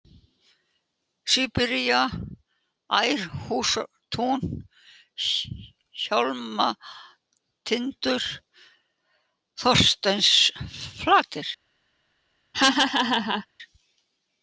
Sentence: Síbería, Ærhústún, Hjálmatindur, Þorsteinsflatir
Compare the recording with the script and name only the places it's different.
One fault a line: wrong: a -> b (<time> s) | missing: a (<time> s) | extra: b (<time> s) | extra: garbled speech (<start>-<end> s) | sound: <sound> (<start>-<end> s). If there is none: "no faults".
sound: laugh (12.5-13.5 s)